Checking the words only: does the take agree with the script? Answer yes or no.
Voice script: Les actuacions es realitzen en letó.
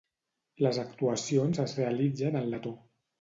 yes